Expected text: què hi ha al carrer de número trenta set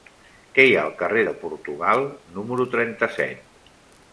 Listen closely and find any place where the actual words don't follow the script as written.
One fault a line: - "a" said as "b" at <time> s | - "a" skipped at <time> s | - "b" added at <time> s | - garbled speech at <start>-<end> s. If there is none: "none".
- "portugal" added at 1.4 s